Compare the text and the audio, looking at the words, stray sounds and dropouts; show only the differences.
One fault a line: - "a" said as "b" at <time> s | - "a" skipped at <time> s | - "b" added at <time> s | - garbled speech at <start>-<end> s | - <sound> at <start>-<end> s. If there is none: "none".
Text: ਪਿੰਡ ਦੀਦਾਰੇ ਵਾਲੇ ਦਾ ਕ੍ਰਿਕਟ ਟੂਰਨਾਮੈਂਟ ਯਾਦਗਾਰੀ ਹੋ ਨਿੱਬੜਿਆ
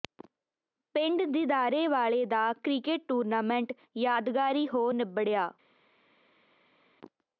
none